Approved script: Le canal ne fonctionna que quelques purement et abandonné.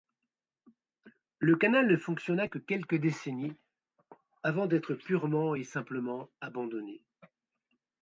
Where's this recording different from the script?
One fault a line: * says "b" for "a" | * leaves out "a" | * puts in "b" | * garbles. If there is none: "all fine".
* puts in "décennies avant d'être"
* puts in "simplement"